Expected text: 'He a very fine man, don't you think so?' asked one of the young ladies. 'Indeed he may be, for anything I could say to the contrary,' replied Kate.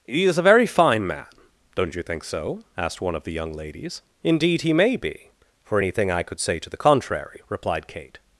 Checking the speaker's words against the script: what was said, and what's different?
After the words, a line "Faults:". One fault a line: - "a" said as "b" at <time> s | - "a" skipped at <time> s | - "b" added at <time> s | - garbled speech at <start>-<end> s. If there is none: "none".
'He is a very fine man, don't you think so?' asked one of the young ladies. 'Indeed he may be, for anything I could say to the contrary,' replied Kate.
Faults:
- "is" added at 0.2 s